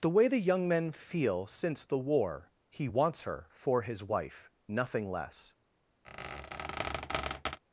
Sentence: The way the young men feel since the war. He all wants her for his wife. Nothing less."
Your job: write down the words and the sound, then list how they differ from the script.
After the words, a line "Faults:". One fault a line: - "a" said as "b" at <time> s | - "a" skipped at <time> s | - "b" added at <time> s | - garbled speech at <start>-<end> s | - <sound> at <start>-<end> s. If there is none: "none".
The way the young men feel since the war. He wants her for his wife. Nothing less."
Faults:
- "all" skipped at 2.9 s
- squeak at 6.0-7.6 s